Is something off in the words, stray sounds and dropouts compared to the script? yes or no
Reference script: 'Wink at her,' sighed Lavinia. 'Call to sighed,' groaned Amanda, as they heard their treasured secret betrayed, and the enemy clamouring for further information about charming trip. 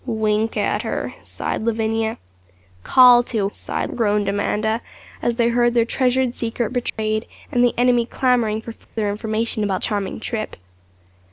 yes